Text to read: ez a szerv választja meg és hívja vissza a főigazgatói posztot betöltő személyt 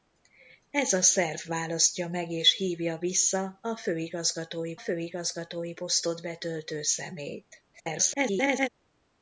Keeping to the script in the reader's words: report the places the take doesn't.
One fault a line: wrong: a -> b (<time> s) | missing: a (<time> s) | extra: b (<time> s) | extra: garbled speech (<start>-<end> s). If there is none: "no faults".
extra: főigazgatói (4.8 s)
extra: garbled speech (7.7-8.7 s)